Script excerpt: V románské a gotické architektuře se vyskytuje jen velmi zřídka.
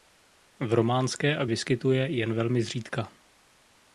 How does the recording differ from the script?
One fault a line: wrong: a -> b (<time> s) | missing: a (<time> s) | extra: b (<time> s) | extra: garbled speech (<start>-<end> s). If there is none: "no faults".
missing: gotické architektuře se (1.4 s)